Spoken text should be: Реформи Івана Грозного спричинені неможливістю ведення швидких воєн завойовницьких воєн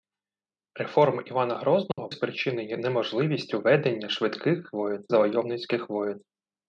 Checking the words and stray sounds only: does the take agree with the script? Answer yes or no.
no